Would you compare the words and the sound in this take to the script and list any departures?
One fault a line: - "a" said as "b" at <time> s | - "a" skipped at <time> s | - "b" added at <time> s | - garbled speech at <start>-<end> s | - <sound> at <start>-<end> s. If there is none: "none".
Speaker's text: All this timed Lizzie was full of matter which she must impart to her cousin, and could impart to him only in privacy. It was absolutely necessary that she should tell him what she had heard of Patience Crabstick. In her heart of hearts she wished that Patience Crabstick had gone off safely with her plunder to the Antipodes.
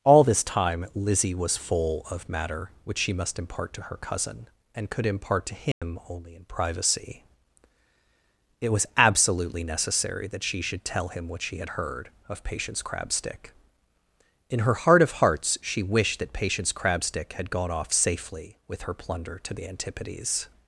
- "timed" said as "time" at 0.4 s
- dropout at 5.7-5.8 s